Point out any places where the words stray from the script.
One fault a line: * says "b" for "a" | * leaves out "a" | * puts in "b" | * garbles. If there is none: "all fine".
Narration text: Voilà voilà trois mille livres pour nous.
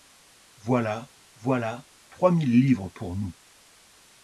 all fine